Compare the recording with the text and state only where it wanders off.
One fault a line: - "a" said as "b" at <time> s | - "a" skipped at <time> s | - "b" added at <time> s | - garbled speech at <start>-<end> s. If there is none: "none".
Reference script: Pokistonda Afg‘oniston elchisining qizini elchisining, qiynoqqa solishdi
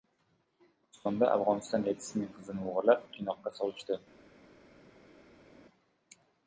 - "elchisining" said as "o‘g‘irlab" at 2.7 s